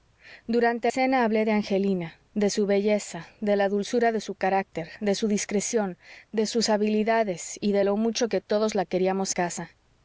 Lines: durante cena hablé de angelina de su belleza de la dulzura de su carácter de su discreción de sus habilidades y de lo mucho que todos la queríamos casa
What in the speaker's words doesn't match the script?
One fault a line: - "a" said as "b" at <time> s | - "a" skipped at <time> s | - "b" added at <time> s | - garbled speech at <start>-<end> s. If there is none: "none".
none